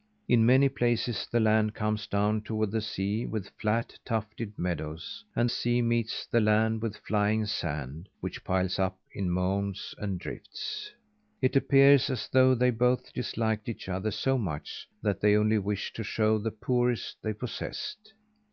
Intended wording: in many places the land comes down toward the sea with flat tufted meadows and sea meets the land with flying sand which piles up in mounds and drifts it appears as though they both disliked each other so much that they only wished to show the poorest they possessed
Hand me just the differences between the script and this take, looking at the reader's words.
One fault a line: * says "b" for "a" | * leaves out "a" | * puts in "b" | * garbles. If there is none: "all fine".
all fine